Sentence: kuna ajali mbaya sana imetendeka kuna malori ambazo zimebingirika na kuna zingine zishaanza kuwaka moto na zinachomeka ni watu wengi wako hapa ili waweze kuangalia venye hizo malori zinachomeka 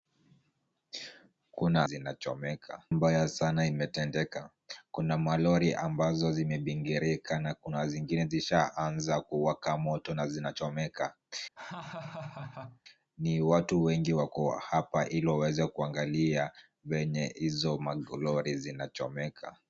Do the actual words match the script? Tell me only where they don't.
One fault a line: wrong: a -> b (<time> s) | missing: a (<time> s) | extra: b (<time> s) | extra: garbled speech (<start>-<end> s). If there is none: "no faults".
wrong: ajali -> zinachomeka (1.8 s)